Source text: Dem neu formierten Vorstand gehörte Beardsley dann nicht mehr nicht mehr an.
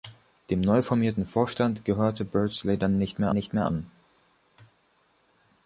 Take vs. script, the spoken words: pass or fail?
pass